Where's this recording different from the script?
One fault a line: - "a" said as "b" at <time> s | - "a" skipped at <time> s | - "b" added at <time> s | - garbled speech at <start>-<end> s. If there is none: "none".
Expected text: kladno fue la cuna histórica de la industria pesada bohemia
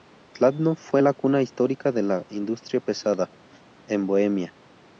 - "en" added at 3.8 s